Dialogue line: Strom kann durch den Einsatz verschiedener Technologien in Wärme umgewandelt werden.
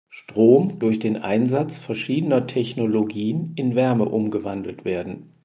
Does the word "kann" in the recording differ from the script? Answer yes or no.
yes